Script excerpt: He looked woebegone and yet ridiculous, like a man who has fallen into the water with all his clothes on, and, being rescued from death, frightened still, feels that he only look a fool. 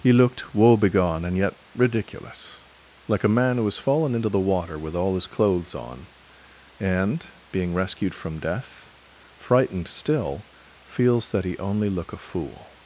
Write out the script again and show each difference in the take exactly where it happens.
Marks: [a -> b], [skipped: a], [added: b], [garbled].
He looked woebegone and yet ridiculous, like a man who has fallen into the water with all his clothes on, and, being rescued from death, frightened still, feels that he only look a fool.